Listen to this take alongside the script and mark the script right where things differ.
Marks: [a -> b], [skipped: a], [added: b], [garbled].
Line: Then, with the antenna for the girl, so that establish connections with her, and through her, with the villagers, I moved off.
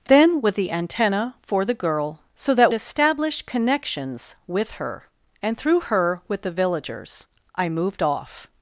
Then, with the antenna for the girl, so that establish connections with her, and through her, with the villagers, I moved off.